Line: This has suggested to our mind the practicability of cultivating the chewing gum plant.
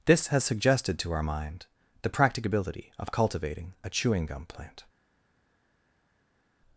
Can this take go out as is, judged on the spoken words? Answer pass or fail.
fail